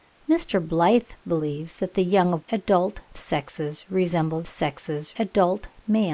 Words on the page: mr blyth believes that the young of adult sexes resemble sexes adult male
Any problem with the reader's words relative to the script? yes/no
no